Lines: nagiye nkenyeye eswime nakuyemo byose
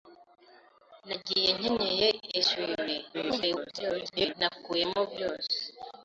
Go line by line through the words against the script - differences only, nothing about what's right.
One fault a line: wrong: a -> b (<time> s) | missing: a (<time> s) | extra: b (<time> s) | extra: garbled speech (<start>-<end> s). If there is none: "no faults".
extra: garbled speech (3.1-4.3 s)